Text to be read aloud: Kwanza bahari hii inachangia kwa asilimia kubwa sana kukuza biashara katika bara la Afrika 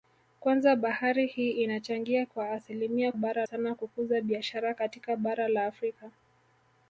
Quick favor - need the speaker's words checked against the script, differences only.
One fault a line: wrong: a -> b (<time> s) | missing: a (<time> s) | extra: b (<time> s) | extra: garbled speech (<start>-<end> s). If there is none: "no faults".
wrong: kubwa -> bara (3.1 s)